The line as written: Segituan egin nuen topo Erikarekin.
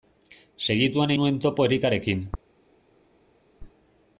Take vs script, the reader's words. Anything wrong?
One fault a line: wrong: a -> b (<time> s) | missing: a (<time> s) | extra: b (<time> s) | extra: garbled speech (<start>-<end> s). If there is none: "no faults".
missing: egin (1.1 s)